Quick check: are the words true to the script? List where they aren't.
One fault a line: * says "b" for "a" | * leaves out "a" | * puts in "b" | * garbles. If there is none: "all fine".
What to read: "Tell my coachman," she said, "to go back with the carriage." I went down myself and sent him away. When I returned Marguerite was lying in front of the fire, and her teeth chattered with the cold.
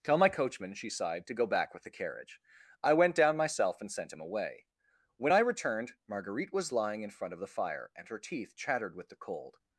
* says "sighed" for "said"